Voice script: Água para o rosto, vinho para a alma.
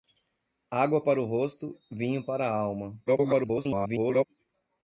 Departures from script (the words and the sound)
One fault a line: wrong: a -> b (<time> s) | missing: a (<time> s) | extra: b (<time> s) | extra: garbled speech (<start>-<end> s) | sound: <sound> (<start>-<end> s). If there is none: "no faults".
extra: garbled speech (3.1-4.3 s)